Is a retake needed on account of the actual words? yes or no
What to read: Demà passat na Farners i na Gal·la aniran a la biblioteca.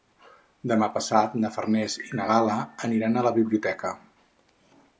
no